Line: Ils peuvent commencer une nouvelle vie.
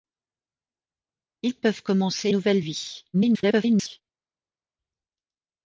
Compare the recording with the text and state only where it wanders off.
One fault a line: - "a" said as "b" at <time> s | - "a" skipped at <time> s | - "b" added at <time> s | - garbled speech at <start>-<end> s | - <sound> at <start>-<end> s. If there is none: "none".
- "une" skipped at 2.3 s
- garbled speech at 3.1-4.0 s